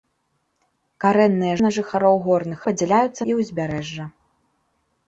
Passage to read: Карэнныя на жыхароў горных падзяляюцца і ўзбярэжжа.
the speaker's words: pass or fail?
pass